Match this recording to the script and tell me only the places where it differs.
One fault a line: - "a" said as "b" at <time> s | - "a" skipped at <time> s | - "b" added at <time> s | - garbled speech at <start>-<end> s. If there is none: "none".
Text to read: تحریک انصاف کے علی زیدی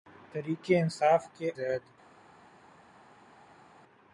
- "علی" skipped at 1.5 s